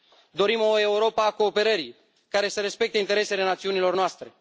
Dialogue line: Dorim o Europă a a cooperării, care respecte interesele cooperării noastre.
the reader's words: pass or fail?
fail